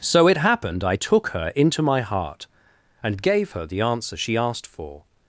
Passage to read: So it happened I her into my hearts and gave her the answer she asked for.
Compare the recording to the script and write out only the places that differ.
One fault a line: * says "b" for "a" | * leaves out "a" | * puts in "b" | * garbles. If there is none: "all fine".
* puts in "took"
* says "heart" for "hearts"